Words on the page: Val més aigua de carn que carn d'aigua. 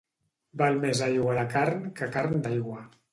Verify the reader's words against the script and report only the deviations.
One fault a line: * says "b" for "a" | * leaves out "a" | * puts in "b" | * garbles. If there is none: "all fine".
all fine